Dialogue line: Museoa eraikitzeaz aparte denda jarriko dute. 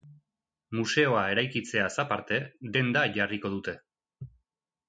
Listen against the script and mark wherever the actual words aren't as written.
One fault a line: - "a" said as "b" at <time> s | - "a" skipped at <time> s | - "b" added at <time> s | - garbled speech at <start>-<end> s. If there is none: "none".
none